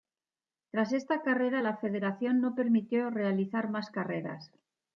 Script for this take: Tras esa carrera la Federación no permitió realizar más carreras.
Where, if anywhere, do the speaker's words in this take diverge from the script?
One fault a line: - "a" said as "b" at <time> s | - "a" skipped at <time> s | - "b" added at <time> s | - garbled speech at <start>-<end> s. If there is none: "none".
- "esa" said as "esta" at 0.9 s